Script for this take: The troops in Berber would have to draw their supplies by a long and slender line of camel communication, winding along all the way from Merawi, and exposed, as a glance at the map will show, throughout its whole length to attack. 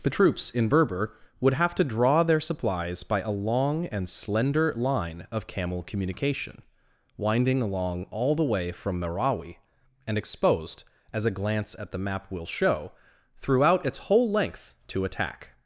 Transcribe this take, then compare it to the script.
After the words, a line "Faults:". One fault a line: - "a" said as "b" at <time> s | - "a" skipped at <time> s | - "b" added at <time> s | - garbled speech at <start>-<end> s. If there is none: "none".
The troops in Berber would have to draw their supplies by a long and slender line of camel communication, winding along all the way from Merawi, and exposed, as a glance at the map will show, throughout its whole length to attack.
Faults:
none